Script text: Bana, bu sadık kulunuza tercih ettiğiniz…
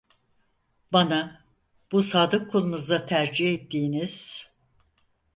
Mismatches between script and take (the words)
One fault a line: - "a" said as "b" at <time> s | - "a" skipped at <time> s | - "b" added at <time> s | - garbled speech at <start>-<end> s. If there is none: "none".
none